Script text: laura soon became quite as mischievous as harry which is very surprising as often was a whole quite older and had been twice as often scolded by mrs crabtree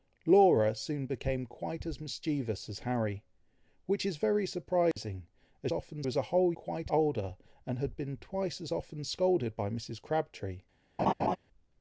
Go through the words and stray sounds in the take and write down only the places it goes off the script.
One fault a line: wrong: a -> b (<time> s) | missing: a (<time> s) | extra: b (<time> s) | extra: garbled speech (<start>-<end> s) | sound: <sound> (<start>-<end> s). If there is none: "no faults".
sound: dropout (4.9-5.0 s)
sound: laugh (11.0-11.4 s)